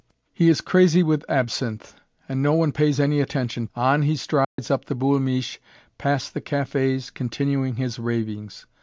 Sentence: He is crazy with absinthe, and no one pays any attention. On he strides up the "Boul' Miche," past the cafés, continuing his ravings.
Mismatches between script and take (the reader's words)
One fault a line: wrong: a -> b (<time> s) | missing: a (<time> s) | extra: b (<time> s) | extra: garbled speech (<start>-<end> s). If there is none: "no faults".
no faults